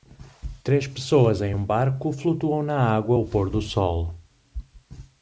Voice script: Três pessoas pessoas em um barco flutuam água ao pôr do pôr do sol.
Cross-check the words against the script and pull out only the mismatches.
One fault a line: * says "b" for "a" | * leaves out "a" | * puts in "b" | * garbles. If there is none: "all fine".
* leaves out "pessoas"
* puts in "na"
* leaves out "pôr do"